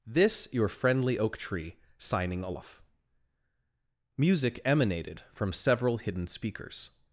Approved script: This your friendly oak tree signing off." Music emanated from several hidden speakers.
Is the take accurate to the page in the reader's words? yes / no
yes